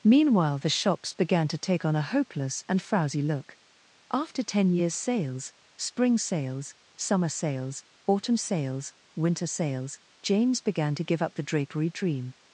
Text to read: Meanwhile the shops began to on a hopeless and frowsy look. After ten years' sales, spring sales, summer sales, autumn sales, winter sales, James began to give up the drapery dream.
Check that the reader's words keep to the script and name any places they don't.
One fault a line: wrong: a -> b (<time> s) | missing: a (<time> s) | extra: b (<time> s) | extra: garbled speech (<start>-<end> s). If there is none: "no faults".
extra: take (1.6 s)